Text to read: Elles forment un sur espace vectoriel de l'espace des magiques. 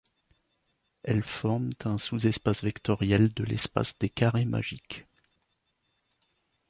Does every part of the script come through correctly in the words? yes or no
no